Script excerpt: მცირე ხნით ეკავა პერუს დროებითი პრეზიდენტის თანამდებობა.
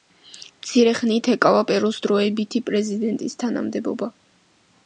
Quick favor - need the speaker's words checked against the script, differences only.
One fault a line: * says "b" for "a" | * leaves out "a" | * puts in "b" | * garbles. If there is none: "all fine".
all fine